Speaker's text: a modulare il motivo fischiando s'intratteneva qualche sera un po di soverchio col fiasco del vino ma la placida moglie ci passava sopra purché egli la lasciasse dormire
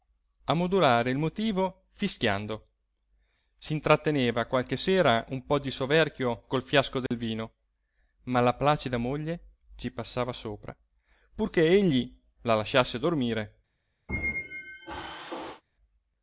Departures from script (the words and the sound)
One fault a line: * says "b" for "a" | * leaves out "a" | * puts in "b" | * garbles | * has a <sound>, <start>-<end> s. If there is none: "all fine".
* has a dropout, 7.1-7.1 s
* has a squeak, 14.1-15.6 s